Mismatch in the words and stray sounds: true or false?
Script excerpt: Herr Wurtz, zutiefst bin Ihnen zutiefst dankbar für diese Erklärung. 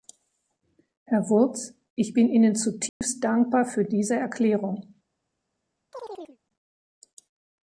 true